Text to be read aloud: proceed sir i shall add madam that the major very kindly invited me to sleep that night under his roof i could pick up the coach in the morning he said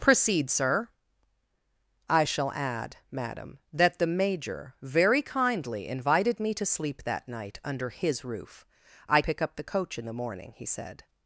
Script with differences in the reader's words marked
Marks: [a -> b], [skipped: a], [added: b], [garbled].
proceed sir i shall add madam that the major very kindly invited me to sleep that night under his roof i [skipped: could] pick up the coach in the morning he said